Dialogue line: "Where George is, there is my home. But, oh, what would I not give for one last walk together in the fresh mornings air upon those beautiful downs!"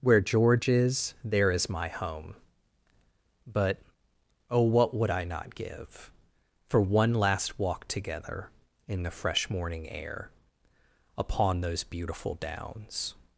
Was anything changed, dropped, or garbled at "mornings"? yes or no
yes